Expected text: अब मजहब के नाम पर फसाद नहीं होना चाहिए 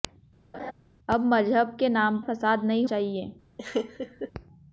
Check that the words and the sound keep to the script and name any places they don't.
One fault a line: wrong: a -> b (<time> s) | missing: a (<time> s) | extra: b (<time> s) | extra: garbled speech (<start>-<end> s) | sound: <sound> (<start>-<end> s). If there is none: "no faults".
sound: laugh (0.5-0.7 s)
missing: पर (2.2 s)
missing: होना (2.9 s)
sound: laugh (3.6-4.3 s)